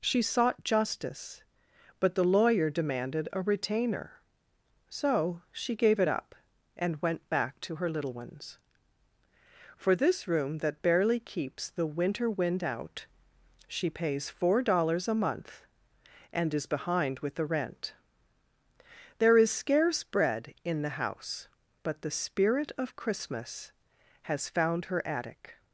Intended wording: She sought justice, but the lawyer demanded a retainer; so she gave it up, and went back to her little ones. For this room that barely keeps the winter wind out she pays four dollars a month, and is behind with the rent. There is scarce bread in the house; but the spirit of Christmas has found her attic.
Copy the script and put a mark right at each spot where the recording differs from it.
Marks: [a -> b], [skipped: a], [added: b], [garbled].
She sought justice, but the lawyer demanded a retainer; so she gave it up, and went back to her little ones. For this room that barely keeps the winter wind out she pays four dollars a month, and is behind with the rent. There is scarce bread in the house; but the spirit of Christmas has found her attic.